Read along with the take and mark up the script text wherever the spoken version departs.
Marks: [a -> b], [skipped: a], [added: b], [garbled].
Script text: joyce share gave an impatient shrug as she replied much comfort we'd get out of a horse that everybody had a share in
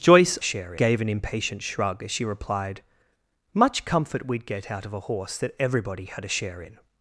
joyce share gave an impatient shrug as she replied much comfort we'd get out of a horse that everybody had a share in